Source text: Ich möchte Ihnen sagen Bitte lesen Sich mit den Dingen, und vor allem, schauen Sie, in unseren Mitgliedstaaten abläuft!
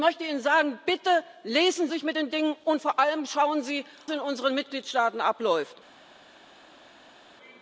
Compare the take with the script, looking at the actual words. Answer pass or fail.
pass